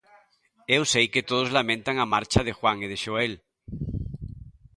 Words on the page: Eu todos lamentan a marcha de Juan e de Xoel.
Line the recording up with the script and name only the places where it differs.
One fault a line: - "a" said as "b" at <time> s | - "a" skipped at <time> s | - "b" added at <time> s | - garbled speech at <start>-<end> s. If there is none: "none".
- "sei que" added at 0.9 s